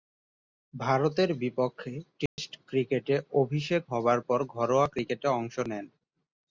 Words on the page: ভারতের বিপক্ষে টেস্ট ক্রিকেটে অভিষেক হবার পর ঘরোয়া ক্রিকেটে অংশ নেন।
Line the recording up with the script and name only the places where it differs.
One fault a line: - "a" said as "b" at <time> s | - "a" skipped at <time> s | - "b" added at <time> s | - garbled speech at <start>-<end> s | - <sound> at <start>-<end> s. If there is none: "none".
- dropout at 2.3-2.4 s